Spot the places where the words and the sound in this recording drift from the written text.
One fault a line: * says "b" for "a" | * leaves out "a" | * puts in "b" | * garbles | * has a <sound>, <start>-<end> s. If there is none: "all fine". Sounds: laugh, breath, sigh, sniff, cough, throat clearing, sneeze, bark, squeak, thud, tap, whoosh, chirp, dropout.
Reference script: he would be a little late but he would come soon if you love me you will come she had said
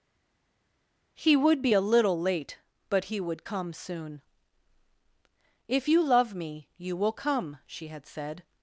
all fine